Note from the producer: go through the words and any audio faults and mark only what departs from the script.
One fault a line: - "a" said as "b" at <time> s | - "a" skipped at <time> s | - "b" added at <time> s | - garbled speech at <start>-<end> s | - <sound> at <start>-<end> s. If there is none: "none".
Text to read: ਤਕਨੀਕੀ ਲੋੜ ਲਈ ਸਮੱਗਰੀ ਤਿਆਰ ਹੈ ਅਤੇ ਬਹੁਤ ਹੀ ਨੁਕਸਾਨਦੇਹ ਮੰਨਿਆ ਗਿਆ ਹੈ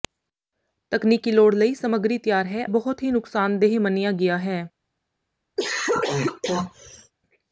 - "ਅਤੇ" skipped at 2.6 s
- cough at 5.6-7.1 s